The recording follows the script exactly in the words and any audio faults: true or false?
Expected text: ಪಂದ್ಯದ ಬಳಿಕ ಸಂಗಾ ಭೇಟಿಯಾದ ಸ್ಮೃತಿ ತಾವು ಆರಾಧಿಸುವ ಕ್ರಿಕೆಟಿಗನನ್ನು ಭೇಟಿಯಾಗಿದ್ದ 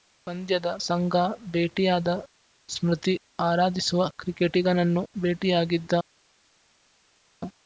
false